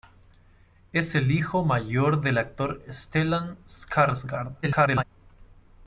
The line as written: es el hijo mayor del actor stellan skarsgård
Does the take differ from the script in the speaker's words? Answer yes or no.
yes